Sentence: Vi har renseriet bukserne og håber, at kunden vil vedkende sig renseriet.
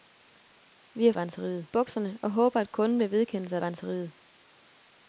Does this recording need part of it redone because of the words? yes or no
no